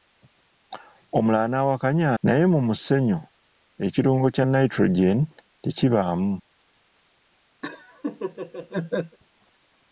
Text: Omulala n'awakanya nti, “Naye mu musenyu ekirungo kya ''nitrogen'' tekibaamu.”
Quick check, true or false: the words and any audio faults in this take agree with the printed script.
false